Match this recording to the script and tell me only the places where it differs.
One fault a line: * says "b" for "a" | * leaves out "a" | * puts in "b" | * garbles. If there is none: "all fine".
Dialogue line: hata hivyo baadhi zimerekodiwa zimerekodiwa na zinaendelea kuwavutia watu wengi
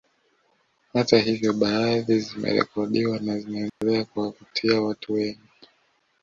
* leaves out "zimerekodiwa"